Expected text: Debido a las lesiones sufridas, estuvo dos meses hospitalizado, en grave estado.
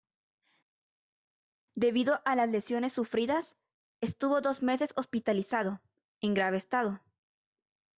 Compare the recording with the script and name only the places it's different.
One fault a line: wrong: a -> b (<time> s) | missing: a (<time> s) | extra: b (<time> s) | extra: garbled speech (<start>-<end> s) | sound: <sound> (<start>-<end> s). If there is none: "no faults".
no faults